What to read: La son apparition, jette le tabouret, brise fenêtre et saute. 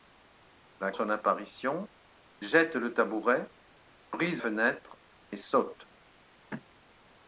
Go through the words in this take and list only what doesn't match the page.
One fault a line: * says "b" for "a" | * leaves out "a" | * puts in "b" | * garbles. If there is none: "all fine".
all fine